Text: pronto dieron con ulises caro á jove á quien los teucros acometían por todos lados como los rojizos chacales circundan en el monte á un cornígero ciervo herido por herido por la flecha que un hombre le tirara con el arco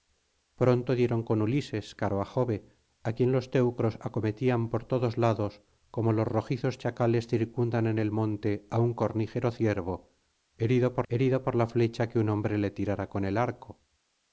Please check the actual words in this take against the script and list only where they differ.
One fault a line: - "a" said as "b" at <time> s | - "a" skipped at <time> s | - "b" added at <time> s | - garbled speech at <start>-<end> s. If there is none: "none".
none